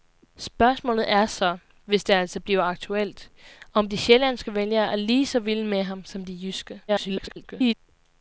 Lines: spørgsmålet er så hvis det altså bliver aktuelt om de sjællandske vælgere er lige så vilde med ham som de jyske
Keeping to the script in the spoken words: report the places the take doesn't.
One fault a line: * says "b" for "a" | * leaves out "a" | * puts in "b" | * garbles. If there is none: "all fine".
* garbles